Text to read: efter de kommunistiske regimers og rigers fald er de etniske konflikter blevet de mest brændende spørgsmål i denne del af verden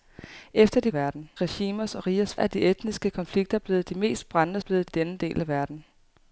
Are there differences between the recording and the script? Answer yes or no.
yes